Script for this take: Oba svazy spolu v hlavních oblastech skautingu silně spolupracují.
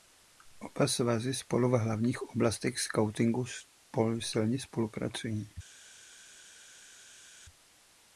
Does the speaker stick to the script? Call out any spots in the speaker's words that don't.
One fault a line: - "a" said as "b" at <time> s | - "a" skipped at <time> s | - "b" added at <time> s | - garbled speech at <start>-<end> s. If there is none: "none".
none